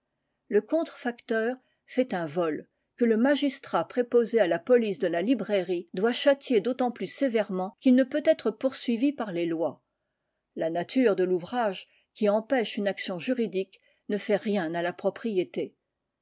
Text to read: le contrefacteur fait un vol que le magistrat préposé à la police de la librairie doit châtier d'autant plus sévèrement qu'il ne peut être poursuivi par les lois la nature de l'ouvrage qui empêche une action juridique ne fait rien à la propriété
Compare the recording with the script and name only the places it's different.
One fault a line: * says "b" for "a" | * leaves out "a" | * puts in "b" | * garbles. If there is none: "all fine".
all fine